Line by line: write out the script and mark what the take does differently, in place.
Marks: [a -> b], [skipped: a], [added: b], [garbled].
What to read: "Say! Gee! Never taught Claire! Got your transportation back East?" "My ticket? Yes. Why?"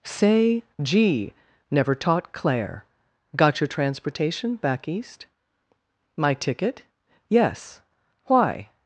"Say! Gee! Never taught Claire! Got your transportation back East?" "My ticket? Yes. Why?"